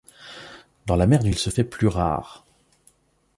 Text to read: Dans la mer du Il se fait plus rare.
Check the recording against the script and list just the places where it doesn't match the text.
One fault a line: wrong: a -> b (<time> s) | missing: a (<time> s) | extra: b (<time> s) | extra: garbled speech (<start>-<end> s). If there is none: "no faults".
no faults